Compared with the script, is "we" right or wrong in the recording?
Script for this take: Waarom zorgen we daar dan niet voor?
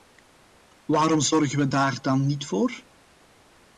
right